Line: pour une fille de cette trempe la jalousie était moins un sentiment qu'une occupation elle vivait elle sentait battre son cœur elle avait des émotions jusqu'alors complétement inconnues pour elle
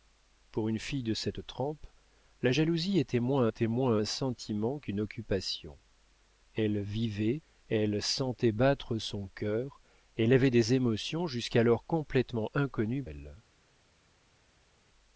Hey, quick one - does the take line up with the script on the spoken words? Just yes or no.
no